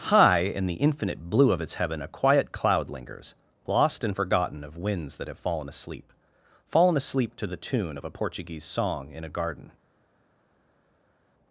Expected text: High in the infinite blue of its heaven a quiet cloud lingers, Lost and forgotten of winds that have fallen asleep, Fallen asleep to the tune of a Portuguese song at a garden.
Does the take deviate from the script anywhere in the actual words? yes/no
yes